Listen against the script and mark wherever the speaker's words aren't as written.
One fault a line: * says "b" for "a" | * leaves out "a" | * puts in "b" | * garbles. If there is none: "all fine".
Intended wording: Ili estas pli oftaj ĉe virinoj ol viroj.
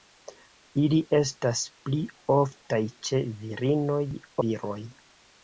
* leaves out "ol"